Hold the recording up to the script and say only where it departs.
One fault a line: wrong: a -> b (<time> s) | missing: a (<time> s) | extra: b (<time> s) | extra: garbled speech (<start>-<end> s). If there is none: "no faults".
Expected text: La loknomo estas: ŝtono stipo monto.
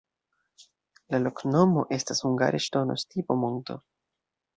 extra: hungare (2.3 s)